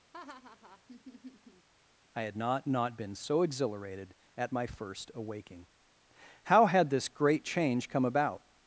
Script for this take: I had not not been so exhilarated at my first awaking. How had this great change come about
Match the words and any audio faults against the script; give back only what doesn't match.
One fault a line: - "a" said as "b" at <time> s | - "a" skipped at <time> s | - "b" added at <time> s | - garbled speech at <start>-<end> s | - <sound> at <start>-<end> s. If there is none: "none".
- laugh at 0.1-1.7 s